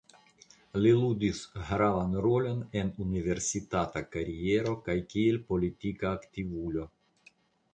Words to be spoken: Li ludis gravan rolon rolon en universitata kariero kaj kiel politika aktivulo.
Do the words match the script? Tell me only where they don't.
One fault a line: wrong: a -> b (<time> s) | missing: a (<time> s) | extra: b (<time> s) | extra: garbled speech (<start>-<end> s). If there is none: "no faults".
missing: rolon (2.6 s)